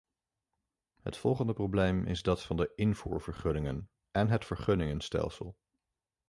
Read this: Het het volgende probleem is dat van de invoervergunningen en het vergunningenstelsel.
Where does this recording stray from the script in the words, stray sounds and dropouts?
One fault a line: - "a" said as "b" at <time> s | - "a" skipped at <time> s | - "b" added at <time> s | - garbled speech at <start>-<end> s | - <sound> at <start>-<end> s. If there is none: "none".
- "het" skipped at 1.2 s